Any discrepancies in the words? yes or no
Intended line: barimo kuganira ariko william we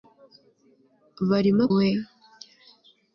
yes